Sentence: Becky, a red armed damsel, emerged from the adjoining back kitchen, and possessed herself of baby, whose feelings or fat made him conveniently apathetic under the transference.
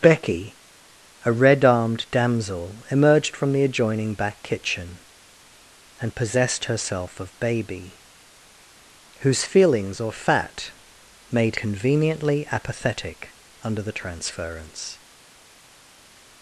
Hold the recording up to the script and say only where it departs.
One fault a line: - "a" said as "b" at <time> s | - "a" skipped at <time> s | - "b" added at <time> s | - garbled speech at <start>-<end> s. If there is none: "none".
- "him" skipped at 11.6 s